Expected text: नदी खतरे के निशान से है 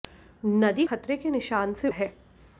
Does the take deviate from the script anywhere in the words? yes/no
no